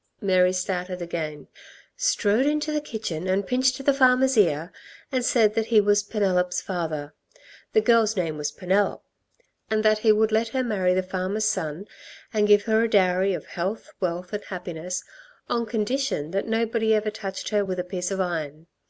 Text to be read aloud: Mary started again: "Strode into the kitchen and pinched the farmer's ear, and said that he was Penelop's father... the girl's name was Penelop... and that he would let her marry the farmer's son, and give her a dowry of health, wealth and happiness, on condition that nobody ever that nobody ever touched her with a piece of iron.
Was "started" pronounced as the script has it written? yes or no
yes